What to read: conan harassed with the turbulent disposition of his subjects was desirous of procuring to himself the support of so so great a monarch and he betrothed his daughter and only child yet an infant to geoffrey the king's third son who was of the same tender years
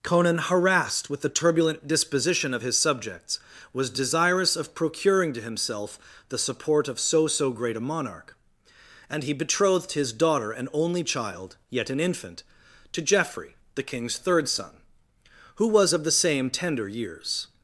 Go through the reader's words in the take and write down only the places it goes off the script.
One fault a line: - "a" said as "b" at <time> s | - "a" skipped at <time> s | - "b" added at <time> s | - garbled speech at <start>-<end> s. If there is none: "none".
none